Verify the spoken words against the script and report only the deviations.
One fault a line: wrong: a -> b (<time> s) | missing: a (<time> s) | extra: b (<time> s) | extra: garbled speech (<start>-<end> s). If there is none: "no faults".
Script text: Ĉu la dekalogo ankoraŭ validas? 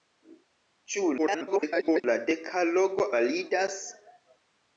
extra: garbled speech (1.2-2.0 s)
missing: ankoraŭ (3.1 s)